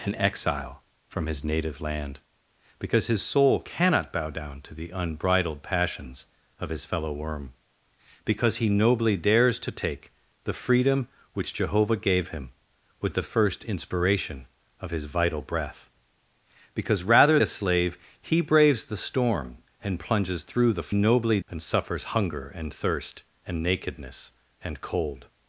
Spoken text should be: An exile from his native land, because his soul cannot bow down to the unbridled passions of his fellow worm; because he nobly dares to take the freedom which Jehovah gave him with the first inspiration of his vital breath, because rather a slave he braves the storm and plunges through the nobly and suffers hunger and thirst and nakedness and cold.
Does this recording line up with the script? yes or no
yes